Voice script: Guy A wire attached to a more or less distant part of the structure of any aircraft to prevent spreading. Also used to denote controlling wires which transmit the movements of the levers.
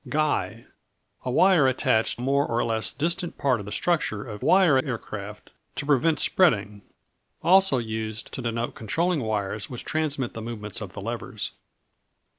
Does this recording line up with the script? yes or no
no